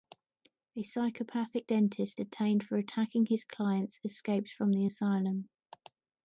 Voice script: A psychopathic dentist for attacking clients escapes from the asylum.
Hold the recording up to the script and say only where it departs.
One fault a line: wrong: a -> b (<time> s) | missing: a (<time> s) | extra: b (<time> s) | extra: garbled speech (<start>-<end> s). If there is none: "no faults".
extra: detained (2.2 s)
extra: his (3.3 s)